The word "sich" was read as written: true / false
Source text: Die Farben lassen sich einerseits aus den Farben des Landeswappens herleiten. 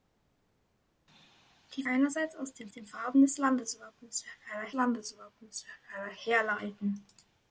false